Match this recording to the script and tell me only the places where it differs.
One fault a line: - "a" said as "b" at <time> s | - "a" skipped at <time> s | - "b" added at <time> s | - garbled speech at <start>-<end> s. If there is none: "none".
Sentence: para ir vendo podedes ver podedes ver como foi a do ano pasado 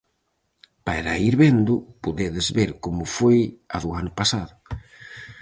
- "podedes ver" skipped at 2.7 s